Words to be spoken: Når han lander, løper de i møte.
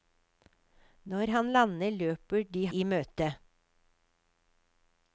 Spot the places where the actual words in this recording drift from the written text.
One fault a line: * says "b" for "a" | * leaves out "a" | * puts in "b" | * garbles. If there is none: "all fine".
all fine